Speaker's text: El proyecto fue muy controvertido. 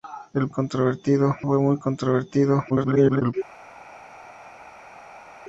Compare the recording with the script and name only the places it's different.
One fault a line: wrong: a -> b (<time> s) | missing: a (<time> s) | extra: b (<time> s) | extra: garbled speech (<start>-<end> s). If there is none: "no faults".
wrong: proyecto -> controvertido (0.5 s)
extra: garbled speech (2.7-3.3 s)